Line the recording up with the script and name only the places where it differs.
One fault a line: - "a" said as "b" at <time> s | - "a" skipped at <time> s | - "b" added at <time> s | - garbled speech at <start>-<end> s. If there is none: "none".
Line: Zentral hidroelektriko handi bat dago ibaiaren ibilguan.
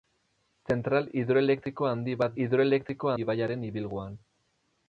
- "dago" said as "hidroelektriko" at 2.4 s